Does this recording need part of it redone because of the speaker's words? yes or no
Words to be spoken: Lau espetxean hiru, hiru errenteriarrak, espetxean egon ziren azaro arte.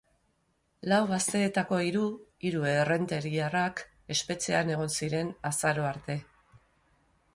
yes